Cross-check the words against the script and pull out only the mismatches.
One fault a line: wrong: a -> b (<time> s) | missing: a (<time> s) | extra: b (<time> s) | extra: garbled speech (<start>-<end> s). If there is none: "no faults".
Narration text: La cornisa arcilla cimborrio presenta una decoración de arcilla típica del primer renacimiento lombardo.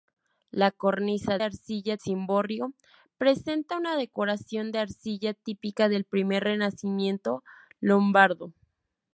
no faults